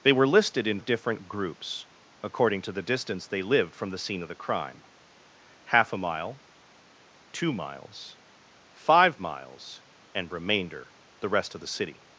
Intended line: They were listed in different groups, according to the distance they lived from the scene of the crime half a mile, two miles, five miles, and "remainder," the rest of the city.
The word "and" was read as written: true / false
true